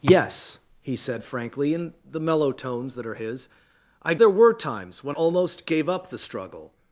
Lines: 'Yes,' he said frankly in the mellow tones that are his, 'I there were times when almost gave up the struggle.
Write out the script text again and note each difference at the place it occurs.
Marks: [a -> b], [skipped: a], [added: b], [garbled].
'Yes,' he said frankly in the mellow tones that are his, 'I there were times when almost gave up the struggle.